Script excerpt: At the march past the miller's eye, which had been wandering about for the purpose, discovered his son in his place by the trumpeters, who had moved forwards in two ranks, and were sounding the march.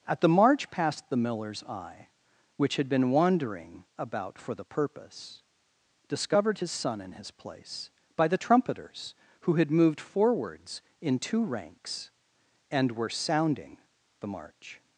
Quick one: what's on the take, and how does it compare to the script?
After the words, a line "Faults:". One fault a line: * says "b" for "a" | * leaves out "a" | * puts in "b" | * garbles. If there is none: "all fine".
At the march past the miller's eye, which had been wandering about for the purpose, discovered his son in his place by the trumpeters, who had moved forwards in two ranks, and were sounding the march.
Faults:
all fine